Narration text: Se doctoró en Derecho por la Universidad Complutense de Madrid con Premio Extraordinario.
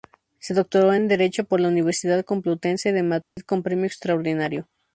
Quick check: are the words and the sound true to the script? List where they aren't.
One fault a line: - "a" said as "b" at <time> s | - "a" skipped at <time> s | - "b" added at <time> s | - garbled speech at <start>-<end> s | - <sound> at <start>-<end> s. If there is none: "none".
- dropout at 3.2-3.4 s